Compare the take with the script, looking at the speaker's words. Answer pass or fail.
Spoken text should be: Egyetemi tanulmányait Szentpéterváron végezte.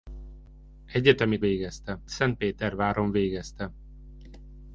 fail